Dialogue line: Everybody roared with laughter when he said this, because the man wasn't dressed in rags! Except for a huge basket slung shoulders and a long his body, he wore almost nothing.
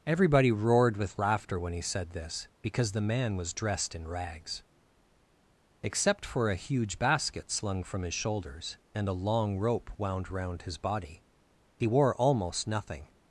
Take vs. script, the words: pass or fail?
fail